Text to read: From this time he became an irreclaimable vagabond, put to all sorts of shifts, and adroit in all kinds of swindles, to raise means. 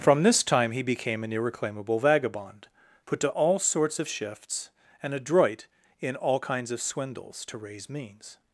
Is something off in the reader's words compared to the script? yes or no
no